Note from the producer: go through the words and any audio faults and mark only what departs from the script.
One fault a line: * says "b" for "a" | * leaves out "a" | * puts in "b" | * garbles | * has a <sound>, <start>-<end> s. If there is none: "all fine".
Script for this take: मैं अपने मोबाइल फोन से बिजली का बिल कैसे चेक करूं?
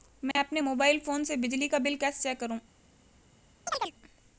* has a dropout, 0.3-0.4 s
* has a chirp, 3.7-3.9 s